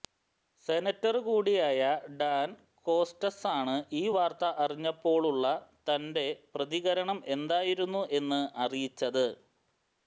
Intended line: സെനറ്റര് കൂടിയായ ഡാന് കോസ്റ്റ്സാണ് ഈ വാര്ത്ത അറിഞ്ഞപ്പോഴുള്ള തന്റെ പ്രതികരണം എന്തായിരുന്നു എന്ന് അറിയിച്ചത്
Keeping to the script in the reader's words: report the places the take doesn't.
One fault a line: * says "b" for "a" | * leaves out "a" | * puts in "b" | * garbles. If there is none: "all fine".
all fine